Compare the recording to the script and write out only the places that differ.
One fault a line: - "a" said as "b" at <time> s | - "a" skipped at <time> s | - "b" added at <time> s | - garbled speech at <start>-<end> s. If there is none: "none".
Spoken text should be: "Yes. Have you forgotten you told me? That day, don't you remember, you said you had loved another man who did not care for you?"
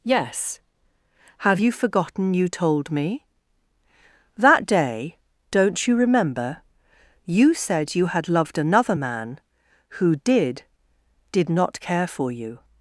- "did" added at 11.3 s